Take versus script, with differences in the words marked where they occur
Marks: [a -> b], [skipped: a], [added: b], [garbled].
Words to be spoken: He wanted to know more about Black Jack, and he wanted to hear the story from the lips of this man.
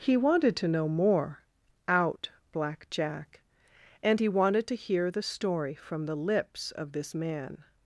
He wanted to know more [about -> out] Black Jack, and he wanted to hear the story from the lips of this man.